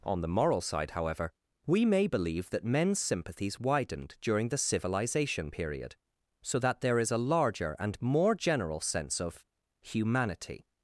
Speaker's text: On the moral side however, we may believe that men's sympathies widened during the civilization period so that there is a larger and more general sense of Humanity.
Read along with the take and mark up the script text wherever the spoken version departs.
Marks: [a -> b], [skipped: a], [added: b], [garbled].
On the moral side however, we may believe that men's sympathies widened during the civilization period so that there is a larger and more general sense of Humanity.